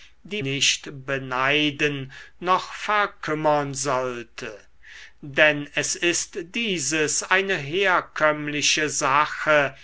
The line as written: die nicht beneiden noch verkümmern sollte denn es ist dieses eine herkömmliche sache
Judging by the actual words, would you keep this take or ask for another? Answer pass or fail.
pass